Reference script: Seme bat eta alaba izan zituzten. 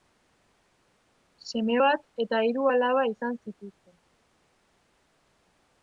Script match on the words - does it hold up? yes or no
no